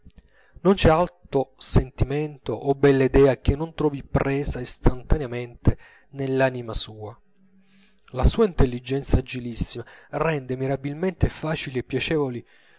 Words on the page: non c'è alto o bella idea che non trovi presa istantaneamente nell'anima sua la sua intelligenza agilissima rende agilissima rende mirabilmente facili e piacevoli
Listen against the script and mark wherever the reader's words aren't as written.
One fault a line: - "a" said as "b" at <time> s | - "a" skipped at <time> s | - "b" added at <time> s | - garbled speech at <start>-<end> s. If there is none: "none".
- "sentimento" added at 1.6 s
- "agilissima rende" skipped at 10.6 s